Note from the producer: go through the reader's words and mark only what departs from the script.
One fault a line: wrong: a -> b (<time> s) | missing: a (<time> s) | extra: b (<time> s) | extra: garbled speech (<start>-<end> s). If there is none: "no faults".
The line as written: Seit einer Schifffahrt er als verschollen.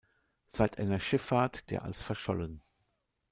no faults